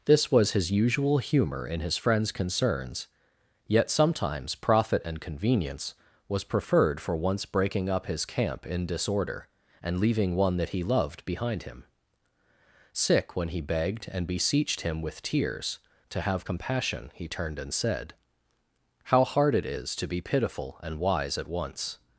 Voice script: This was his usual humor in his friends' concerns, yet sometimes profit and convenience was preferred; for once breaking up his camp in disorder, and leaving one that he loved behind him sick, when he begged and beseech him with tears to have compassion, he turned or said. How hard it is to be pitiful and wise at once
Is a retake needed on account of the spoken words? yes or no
yes